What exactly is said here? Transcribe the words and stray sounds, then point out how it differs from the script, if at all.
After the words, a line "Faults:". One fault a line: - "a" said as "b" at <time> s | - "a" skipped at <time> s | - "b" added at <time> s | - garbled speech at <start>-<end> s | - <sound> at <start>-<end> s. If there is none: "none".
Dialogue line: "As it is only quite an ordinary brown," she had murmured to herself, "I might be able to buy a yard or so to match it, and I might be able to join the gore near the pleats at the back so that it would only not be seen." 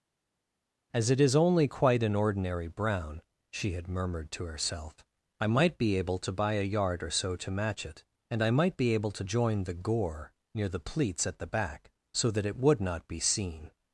"As it is only quite an ordinary brown," she had murmured to herself, "I might be able to buy a yard or so to match it, and I might be able to join the gore near the pleats at the back so that it would not be seen."
Faults:
- "only" skipped at 12.8 s